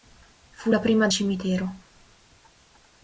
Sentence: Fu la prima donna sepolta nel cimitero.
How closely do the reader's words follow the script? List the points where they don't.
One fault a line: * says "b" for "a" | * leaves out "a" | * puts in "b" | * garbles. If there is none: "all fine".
* leaves out "donna sepolta nel"